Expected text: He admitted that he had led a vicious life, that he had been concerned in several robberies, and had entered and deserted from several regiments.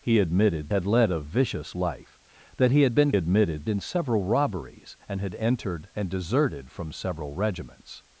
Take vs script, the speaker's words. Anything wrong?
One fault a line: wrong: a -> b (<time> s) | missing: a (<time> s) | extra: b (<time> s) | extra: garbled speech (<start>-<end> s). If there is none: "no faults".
missing: that he (0.7 s)
wrong: concerned -> admitted (3.1 s)